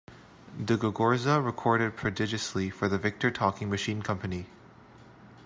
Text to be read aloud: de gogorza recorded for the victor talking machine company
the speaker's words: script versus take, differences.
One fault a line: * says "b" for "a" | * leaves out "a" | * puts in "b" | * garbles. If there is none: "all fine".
* puts in "prodigiously"